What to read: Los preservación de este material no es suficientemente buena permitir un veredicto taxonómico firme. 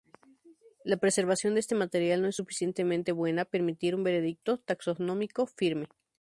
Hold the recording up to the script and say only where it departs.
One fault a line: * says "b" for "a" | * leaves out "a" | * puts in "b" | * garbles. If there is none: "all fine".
* says "La" for "Los"